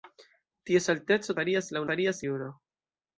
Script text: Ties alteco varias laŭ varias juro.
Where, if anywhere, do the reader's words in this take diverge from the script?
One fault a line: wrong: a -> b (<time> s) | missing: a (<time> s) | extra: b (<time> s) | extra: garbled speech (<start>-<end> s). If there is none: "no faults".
no faults